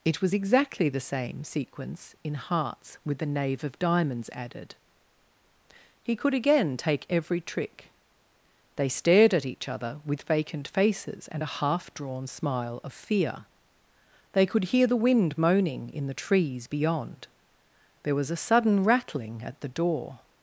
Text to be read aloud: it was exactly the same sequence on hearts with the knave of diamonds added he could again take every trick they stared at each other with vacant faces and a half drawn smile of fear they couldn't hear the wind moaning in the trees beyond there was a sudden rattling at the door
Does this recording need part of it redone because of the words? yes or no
yes